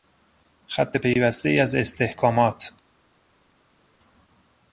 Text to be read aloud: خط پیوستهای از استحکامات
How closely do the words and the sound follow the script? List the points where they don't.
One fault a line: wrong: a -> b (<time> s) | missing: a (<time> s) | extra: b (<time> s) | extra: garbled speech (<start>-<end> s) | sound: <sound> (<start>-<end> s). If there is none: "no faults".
no faults